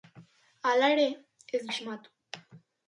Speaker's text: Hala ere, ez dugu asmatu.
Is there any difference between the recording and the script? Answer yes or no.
yes